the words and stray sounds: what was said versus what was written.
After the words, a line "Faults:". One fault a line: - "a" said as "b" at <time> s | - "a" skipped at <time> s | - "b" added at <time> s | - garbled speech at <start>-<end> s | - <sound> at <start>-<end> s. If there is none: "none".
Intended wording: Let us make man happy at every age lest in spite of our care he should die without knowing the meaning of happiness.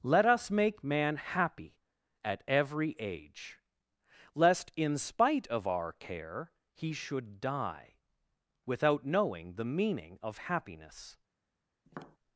Let us make man happy at every age lest in spite of our care he should die without knowing the meaning of happiness.
Faults:
- tap at 11.9-12.2 s